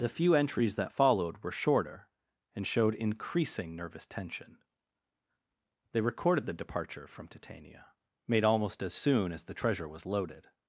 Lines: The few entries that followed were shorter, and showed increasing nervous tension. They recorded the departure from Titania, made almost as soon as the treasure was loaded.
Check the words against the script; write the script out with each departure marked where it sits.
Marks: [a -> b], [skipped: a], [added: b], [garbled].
The few entries that followed were shorter, and showed increasing nervous tension. They recorded the departure from Titania, made almost as soon as the treasure was loaded.